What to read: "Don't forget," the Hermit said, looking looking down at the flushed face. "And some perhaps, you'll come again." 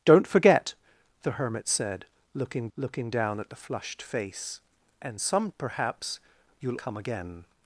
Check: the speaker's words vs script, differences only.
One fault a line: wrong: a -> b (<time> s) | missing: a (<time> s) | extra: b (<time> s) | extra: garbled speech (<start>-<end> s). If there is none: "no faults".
no faults